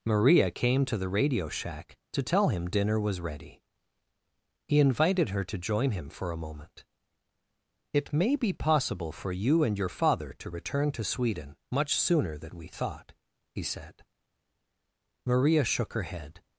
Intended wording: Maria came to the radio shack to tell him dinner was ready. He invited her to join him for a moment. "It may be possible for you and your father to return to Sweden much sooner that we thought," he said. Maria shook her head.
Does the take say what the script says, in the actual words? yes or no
no